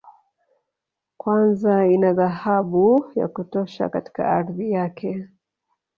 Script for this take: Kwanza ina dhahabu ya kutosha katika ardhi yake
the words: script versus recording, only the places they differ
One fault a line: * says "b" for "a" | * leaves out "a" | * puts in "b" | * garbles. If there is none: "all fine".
all fine